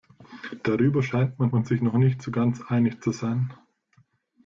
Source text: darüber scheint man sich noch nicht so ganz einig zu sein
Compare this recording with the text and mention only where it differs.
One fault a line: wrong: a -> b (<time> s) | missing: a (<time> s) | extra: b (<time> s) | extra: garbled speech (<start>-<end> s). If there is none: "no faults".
extra: man (1.5 s)